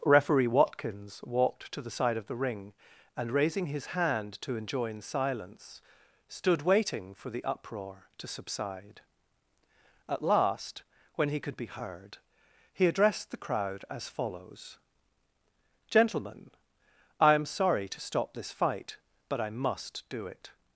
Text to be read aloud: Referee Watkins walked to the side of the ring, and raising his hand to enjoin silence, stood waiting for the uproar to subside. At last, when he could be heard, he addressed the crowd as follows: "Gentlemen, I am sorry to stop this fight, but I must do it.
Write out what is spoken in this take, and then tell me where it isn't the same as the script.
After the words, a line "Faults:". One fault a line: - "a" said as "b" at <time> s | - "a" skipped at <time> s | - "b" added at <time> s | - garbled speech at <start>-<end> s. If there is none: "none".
Referee Watkins walked to the side of the ring, and raising his hand to enjoin silence, stood waiting for the uproar to subside. At last, when he could be heard, he addressed the crowd as follows: "Gentlemen, I am sorry to stop this fight, but I must do it.
Faults:
none